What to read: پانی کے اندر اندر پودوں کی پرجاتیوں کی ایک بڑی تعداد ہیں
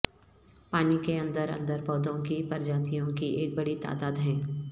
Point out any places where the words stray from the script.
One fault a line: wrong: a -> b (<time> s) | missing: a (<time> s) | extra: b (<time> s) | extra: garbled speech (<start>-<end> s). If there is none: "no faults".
no faults